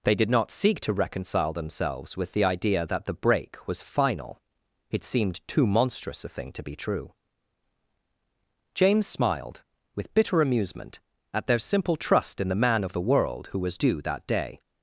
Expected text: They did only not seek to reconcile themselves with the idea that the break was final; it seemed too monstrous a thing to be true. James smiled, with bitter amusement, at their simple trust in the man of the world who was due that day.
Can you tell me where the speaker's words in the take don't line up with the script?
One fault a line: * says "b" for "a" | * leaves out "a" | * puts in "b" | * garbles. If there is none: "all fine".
* leaves out "only"